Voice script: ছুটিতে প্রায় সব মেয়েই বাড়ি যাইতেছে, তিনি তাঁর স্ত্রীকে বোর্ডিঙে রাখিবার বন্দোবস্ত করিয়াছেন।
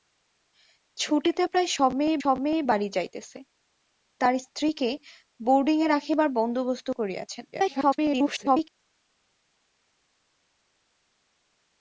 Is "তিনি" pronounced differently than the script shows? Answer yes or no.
yes